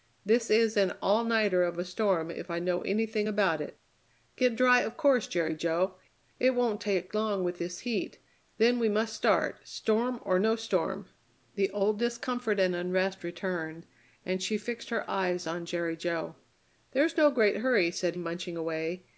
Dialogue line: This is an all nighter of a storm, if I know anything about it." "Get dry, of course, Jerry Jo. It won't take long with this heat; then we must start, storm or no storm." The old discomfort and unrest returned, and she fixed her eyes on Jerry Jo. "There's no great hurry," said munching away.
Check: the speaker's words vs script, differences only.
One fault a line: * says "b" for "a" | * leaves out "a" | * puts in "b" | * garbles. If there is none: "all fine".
all fine